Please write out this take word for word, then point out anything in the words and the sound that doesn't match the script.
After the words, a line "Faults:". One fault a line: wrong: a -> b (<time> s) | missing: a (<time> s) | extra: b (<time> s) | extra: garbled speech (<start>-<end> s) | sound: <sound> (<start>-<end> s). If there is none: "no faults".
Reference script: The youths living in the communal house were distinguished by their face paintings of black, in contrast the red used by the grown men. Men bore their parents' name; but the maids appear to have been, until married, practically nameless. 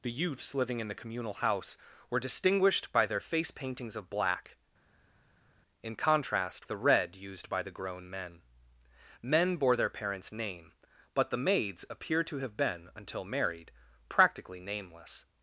The youths living in the communal house were distinguished by their face paintings of black, in contrast the red used by the grown men. Men bore their parents' name; but the maids appear to have been, until married, practically nameless.
Faults:
no faults